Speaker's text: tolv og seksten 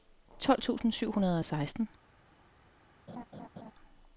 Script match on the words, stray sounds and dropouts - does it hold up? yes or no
no